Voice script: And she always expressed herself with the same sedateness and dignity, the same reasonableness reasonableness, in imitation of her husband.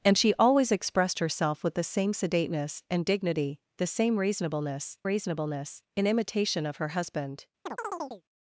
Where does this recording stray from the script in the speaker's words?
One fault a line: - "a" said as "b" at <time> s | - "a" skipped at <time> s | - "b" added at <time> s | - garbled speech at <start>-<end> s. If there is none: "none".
none